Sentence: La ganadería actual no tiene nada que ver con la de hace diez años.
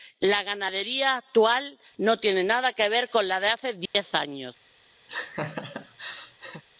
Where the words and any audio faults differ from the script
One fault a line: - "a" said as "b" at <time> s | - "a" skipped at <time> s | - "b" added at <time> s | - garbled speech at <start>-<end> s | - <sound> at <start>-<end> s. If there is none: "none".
- dropout at 3.9-3.9 s
- laugh at 5.1-6.6 s